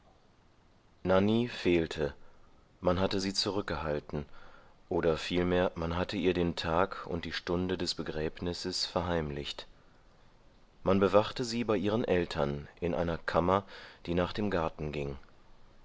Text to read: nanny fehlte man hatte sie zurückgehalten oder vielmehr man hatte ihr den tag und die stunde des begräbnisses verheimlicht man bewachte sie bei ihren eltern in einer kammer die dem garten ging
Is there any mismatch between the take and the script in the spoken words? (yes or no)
yes